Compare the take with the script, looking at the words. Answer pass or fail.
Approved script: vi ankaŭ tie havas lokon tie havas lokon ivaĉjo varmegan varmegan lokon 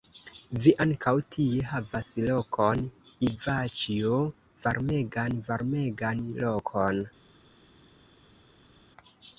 fail